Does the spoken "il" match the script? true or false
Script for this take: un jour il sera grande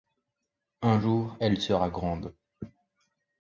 false